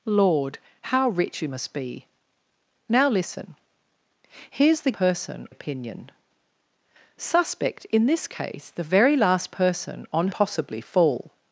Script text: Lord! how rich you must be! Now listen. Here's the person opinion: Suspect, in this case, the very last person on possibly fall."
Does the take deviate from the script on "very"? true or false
false